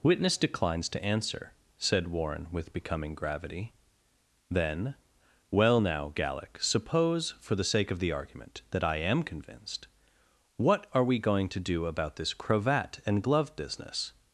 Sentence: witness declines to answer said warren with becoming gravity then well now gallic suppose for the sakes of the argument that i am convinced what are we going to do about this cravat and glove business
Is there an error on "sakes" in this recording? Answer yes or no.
yes